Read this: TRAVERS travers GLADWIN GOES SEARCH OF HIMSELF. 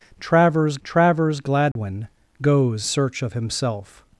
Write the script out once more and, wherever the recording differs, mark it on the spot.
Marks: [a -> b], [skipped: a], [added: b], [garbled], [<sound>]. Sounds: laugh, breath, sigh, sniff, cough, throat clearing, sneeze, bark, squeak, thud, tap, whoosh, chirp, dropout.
TRAVERS travers GLADWIN [dropout] GOES SEARCH OF HIMSELF.